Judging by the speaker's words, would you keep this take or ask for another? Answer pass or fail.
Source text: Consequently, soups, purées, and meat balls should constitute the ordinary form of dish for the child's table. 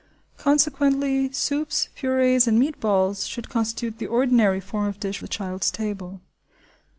fail